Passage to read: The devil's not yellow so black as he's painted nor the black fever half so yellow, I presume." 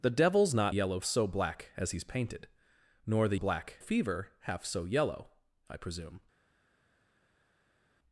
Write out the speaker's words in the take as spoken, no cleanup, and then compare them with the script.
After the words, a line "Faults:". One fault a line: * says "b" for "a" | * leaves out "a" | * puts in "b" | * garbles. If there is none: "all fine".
The devil's not yellow so black as he's painted nor the black fever half so yellow, I presume."
Faults:
all fine